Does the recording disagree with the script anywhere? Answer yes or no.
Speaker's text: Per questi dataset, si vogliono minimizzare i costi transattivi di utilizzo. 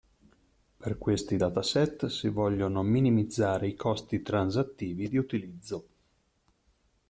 no